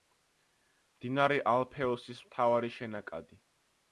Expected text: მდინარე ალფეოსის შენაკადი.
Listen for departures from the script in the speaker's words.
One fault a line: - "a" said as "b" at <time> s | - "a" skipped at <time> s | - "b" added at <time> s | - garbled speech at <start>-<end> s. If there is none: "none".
- "მთავარი" added at 2.3 s